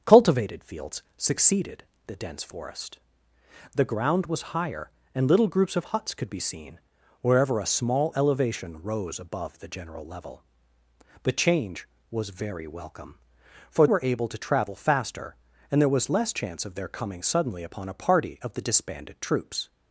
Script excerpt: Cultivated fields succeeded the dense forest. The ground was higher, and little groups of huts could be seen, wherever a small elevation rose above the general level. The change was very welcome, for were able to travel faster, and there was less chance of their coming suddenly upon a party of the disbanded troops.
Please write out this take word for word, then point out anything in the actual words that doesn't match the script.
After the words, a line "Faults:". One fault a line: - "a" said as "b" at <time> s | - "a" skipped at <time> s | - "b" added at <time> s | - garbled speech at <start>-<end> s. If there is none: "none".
Cultivated fields succeeded the dense forest. The ground was higher, and little groups of huts could be seen, wherever a small elevation rose above the general level. The change was very welcome, for were able to travel faster, and there was less chance of their coming suddenly upon a party of the disbanded troops.
Faults:
none